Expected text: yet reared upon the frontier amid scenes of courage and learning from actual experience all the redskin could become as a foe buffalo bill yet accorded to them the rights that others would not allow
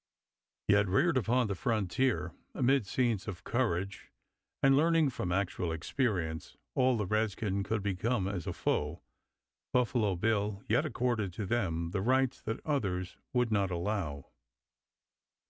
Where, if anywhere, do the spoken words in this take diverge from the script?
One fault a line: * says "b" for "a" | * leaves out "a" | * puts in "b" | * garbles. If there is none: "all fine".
all fine